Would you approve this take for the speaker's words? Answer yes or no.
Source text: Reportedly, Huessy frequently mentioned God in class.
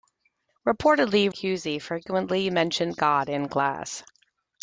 yes